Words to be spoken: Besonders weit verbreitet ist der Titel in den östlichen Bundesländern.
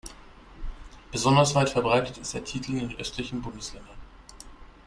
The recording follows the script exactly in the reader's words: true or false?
true